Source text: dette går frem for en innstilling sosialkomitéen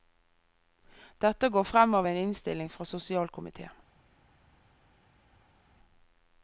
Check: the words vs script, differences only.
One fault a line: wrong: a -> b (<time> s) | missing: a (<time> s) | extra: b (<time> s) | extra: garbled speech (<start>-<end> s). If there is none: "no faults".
wrong: for -> av (1.9 s)
extra: fra (2.7 s)